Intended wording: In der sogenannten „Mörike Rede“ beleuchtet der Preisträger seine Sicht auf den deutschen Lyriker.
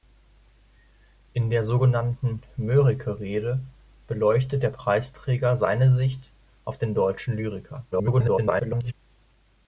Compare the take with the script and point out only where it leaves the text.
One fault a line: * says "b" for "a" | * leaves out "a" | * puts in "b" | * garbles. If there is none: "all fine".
* garbles